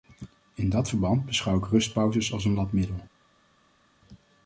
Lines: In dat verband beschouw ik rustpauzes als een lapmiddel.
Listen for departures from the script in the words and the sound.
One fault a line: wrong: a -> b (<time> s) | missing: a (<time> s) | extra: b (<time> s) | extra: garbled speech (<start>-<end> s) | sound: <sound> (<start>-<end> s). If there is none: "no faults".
no faults